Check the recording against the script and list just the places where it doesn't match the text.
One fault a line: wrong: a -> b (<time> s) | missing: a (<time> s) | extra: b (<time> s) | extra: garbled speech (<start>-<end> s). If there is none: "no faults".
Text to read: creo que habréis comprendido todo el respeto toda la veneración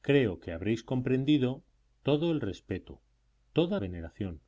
missing: la (3.8 s)